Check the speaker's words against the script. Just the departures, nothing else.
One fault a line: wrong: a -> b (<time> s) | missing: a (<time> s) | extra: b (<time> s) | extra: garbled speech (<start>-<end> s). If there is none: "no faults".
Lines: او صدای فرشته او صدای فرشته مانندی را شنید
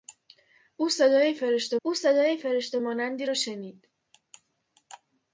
no faults